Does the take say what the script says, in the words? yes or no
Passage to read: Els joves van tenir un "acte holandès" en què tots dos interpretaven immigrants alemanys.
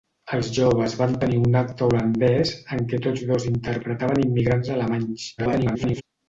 no